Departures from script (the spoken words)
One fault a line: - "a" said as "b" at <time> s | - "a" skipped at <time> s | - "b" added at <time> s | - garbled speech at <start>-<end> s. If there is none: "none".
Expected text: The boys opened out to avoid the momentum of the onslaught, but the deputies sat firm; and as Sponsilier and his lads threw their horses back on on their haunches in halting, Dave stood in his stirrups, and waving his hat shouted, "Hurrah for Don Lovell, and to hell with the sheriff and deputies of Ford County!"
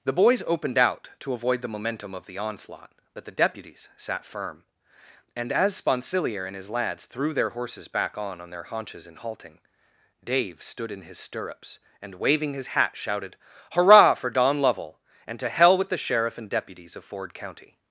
none